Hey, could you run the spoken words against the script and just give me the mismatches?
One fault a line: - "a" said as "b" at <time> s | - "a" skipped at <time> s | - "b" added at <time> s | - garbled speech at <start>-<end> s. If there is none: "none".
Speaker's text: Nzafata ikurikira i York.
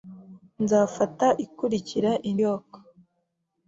none